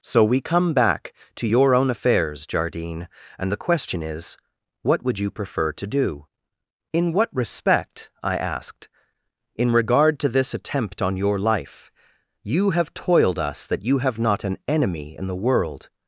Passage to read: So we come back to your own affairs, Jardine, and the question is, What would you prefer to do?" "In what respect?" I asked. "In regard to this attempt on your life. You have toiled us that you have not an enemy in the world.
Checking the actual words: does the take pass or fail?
pass